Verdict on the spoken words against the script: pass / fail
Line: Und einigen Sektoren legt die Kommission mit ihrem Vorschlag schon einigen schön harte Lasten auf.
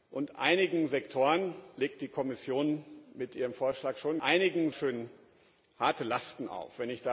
pass